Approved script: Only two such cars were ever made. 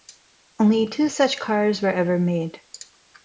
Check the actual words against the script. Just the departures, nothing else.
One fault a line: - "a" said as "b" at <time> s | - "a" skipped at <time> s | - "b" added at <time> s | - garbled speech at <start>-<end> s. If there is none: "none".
none